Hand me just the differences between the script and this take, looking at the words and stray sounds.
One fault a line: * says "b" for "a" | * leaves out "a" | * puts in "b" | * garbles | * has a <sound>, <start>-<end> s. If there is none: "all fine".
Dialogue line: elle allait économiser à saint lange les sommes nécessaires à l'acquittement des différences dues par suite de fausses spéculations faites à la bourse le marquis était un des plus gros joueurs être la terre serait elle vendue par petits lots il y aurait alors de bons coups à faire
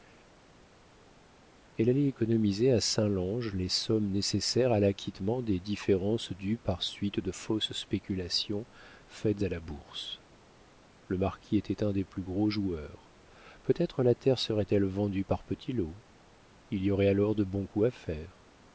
* puts in "peut"